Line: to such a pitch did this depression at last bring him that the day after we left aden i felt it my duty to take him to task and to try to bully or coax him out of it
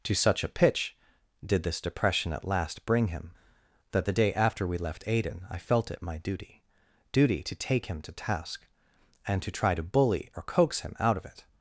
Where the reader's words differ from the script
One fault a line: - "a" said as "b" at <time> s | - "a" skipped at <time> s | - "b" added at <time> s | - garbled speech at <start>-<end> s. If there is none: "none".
- "duty" added at 7.1 s